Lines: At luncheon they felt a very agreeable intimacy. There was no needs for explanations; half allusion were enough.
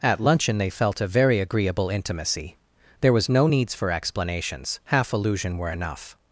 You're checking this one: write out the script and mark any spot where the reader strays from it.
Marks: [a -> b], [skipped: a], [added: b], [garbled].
At luncheon they felt a very agreeable intimacy. There was no needs for explanations; half allusion were enough.